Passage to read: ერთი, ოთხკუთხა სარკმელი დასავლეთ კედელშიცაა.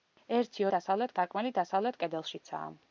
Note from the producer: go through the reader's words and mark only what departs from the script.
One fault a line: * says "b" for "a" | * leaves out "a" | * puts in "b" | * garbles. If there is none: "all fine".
* says "დასავლეთ" for "ოთხკუთხა"